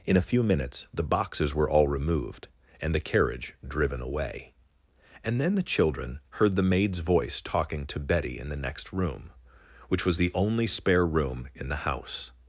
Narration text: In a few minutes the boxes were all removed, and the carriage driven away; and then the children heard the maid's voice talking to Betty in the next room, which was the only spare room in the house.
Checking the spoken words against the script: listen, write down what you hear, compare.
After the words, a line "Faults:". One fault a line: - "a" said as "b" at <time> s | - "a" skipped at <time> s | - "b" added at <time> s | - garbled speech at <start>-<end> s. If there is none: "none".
In a few minutes the boxes were all removed, and the carriage driven away; and then the children heard the maid's voice talking to Betty in the next room, which was the only spare room in the house.
Faults:
none